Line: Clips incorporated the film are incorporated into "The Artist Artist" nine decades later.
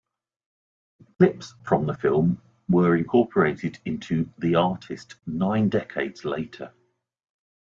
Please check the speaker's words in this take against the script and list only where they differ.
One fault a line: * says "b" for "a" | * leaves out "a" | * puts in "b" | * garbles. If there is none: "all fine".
* says "from" for "incorporated"
* says "were" for "are"
* leaves out "Artist"